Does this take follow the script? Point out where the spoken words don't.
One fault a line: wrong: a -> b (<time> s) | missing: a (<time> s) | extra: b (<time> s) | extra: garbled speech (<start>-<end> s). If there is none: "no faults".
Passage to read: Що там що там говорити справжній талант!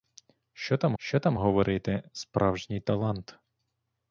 no faults